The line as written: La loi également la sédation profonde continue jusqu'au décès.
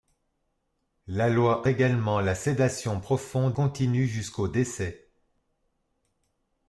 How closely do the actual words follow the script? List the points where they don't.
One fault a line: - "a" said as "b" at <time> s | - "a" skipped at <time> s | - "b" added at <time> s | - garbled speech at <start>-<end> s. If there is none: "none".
none